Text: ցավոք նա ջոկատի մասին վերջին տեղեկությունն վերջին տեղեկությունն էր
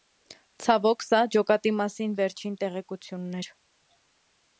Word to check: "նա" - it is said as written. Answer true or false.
false